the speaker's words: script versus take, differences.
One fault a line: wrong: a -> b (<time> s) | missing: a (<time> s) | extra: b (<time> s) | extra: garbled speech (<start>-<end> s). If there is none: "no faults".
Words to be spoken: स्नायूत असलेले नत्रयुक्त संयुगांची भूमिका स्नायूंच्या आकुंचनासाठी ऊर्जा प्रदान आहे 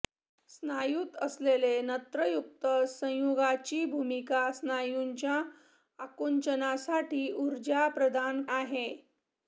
no faults